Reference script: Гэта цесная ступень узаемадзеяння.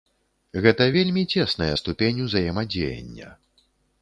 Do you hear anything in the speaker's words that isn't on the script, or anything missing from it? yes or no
yes